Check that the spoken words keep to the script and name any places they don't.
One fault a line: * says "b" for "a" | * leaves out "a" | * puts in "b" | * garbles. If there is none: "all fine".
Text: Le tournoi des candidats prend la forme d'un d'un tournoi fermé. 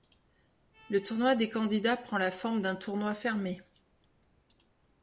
* leaves out "d'un"